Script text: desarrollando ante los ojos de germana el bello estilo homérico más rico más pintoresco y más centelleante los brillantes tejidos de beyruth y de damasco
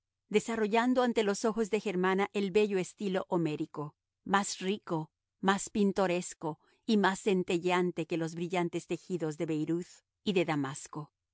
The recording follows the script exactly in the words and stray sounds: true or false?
false